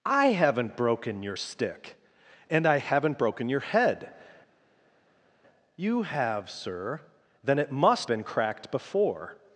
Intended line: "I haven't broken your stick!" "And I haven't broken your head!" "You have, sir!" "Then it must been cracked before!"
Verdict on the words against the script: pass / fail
pass